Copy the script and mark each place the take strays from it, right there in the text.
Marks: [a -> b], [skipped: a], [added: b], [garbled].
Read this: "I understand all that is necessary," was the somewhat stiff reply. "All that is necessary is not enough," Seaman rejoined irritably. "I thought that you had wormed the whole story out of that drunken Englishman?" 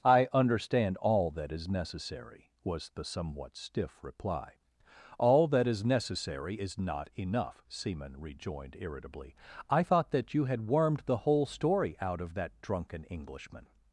"I understand all that is necessary," was the somewhat stiff reply. "All that is necessary is not enough," Seaman rejoined irritably. "I thought that you had wormed the whole story out of that drunken Englishman?"